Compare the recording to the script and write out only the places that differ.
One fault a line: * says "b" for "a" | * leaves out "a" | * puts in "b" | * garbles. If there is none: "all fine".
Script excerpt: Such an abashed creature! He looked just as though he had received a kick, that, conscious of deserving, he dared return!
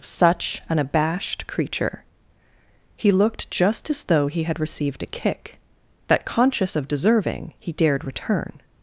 all fine